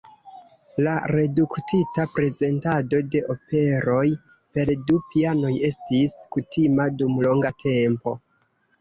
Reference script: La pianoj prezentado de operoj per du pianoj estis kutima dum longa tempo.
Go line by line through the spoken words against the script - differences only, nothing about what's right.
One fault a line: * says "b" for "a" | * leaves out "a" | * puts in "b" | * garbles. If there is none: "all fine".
* says "reduktita" for "pianoj"